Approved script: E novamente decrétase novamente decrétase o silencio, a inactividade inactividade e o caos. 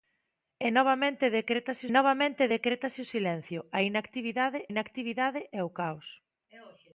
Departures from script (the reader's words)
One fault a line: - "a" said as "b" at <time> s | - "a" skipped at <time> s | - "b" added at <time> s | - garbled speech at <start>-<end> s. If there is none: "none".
none